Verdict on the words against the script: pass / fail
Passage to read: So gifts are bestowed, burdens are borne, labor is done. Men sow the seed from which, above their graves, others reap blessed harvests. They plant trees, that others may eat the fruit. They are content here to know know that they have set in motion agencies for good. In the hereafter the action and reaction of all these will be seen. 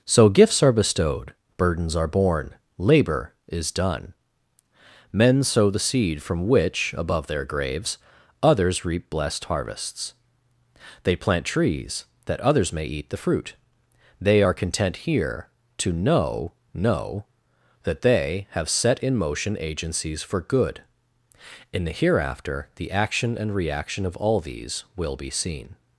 pass